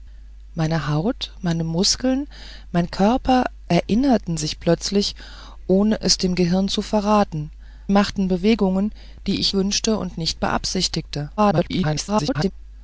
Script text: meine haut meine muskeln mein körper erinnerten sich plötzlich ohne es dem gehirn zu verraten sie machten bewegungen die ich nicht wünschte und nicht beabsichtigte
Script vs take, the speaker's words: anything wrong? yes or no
yes